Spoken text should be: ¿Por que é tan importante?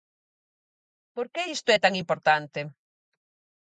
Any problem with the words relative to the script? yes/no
yes